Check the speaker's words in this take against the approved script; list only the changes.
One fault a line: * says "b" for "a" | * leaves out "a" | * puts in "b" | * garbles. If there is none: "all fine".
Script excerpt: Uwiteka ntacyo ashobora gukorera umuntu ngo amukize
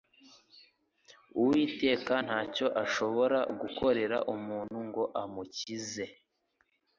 all fine